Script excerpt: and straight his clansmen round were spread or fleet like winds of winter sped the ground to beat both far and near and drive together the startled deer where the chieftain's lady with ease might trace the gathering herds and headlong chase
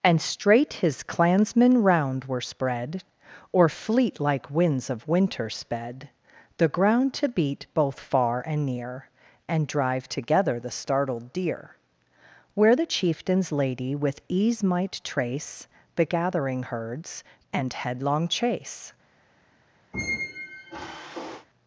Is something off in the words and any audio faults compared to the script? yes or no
yes